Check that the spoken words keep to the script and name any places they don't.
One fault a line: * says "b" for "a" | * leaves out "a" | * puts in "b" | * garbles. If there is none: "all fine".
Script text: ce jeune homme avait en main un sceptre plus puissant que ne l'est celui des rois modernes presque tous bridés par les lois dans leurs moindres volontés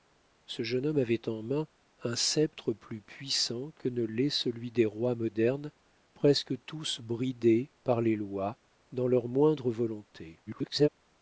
* garbles